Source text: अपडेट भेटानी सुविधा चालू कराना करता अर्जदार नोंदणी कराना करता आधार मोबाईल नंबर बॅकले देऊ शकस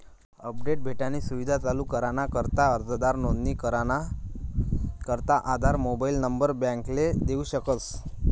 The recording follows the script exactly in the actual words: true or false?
true